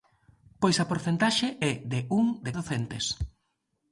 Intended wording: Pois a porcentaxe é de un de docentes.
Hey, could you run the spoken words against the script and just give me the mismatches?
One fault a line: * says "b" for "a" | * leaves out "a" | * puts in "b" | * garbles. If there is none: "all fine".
all fine